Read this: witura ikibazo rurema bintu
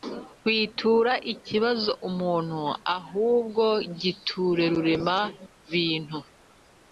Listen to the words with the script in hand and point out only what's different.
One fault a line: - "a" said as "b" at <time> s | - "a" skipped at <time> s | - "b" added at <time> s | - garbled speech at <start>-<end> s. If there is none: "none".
- "umuntu ahubwo giture" added at 2.1 s